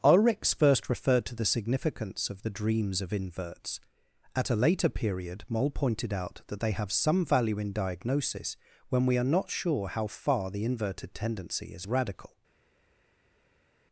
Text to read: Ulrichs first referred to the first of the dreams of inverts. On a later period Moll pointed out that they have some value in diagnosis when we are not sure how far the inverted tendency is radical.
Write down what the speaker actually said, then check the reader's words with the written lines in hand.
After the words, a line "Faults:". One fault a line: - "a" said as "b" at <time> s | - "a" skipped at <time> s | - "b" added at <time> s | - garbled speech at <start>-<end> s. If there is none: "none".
Ulrichs first referred to the significance of the dreams of inverts. At a later period Moll pointed out that they have some value in diagnosis when we are not sure how far the inverted tendency is radical.
Faults:
- "first" said as "significance" at 1.4 s
- "On" said as "At" at 4.3 s